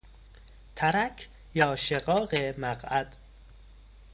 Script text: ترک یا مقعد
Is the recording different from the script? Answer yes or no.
yes